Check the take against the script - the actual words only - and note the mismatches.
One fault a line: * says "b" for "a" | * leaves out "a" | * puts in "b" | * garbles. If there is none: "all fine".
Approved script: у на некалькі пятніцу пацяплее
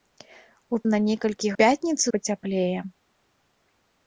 all fine